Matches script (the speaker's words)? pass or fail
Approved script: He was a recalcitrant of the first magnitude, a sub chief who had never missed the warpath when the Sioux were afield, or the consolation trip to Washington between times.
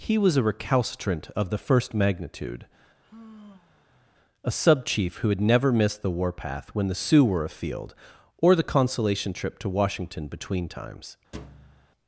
pass